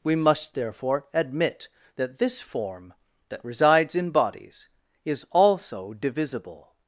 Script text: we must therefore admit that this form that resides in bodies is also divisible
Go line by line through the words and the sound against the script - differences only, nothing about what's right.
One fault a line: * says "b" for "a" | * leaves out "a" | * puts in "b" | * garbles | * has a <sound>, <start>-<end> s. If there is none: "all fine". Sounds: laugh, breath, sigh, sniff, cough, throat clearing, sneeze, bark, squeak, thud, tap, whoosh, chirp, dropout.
all fine